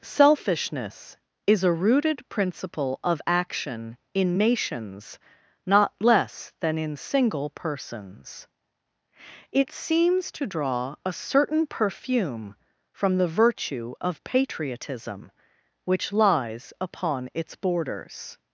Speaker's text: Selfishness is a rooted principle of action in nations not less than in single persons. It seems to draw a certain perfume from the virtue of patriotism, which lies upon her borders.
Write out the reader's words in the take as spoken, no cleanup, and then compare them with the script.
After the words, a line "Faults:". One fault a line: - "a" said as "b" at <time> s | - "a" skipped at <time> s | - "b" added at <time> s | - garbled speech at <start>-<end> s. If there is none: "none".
Selfishness is a rooted principle of action in nations not less than in single persons. It seems to draw a certain perfume from the virtue of patriotism, which lies upon its borders.
Faults:
- "her" said as "its" at 17.3 s